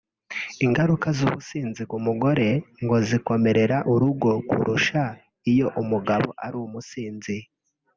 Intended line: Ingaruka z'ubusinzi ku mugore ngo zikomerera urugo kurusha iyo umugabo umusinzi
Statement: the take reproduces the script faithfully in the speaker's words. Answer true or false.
false